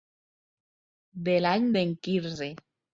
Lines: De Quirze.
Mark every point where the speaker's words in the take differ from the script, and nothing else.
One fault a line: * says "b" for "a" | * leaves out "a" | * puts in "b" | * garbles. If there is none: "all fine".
* puts in "l'any d'en"